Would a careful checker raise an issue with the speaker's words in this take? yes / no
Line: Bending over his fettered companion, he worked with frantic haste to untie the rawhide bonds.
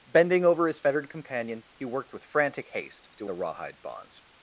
yes